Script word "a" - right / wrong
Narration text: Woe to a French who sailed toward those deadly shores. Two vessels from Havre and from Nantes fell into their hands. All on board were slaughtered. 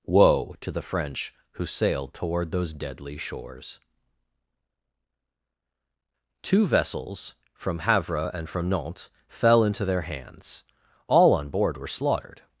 wrong